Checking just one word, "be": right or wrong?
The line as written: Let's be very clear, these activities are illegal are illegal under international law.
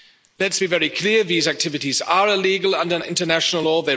right